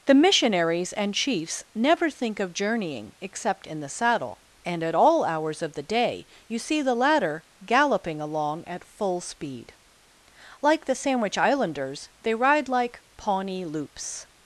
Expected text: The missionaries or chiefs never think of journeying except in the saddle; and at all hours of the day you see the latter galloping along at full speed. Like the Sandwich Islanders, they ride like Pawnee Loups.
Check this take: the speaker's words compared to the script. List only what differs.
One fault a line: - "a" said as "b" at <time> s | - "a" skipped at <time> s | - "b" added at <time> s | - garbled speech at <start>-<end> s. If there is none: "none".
- "or" said as "and" at 0.9 s